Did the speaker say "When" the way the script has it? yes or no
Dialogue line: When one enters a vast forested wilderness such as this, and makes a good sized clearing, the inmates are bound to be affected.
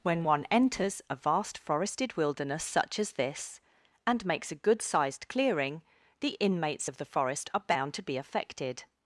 yes